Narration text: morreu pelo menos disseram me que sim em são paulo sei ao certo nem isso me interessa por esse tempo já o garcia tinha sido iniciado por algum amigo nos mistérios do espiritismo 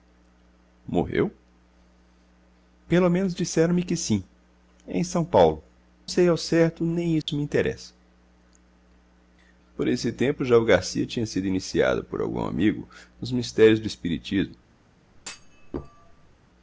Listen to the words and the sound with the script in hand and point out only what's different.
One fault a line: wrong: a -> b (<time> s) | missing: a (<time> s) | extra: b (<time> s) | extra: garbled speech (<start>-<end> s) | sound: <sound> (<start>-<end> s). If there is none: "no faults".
sound: dropout (7.2-7.3 s)
sound: thud (15.2-16.4 s)